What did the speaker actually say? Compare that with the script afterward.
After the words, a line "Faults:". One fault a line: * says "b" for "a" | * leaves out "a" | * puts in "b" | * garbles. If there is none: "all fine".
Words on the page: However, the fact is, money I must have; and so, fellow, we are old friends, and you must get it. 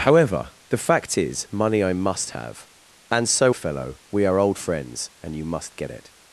However, the fact is, money I must have; and so, fellow, we are old friends, and you must get it.
Faults:
all fine